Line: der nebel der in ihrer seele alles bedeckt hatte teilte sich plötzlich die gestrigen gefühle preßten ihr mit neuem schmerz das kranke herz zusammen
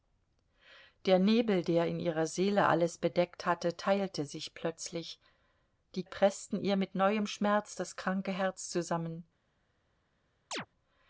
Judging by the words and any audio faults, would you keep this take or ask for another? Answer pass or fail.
fail